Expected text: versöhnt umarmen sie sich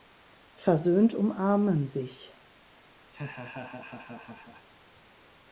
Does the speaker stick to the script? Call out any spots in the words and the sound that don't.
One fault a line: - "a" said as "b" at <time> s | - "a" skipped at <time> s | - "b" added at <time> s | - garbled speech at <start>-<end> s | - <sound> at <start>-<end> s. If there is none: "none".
- "sie" skipped at 1.9 s
- laugh at 3.1-4.7 s